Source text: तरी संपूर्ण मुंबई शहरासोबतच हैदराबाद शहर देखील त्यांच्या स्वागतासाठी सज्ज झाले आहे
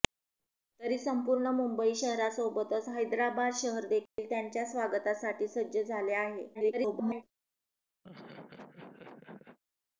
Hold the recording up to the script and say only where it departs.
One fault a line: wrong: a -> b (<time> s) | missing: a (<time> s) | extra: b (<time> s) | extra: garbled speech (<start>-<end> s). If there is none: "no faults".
extra: garbled speech (6.5-7.2 s)